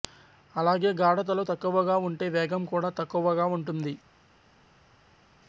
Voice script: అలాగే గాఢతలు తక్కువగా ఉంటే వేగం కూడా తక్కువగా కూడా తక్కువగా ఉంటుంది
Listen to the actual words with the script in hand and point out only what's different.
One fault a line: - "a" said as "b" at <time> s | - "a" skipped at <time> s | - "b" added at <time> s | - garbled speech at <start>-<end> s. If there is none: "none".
- "కూడా తక్కువగా" skipped at 3.5 s